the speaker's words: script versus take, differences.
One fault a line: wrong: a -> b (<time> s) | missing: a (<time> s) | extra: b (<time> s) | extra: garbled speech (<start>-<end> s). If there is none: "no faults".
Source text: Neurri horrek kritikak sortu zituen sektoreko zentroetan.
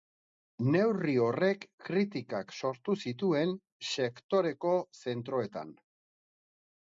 no faults